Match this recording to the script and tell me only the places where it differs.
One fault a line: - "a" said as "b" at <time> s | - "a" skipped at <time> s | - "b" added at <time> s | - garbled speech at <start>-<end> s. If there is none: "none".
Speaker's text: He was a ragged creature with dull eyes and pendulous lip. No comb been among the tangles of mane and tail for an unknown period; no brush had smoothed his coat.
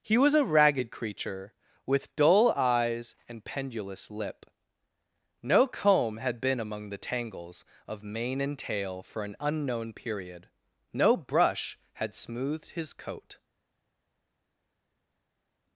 - "had" added at 6.2 s